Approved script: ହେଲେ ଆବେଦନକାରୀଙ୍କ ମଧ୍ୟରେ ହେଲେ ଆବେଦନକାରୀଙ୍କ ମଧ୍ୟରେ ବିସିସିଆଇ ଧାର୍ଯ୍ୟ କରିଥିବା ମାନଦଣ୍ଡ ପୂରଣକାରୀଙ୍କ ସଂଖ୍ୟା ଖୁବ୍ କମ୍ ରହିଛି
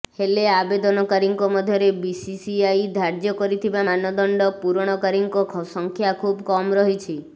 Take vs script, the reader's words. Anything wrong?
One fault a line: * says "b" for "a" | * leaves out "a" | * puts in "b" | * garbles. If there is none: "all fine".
* leaves out "ହେଲେ ଆବେଦନକାରୀଙ୍କ ମଧ୍ୟରେ"